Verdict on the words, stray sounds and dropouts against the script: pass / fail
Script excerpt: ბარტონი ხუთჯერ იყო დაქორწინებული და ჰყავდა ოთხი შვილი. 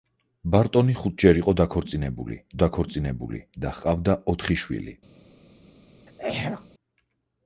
fail